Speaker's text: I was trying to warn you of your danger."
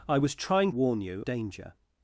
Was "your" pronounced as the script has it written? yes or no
no